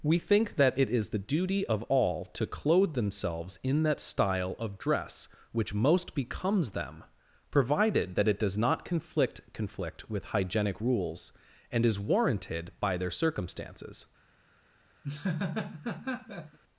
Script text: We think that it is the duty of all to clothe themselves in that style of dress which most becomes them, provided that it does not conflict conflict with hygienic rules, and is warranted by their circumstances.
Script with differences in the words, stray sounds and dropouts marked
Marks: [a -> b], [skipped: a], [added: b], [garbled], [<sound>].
We think that it is the duty of all to clothe themselves in that style of dress which most becomes them, provided that it does not conflict conflict with hygienic rules, and is warranted by their circumstances. [laugh]